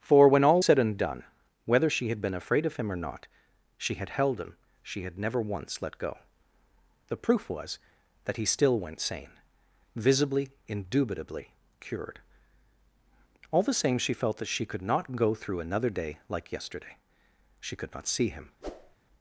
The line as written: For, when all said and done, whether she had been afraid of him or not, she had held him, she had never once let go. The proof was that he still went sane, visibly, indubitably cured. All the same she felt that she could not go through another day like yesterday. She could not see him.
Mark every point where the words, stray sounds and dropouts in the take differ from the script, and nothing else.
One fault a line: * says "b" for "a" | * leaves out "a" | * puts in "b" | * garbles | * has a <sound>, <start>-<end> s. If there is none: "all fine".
* has a whoosh, 18.6-19.0 s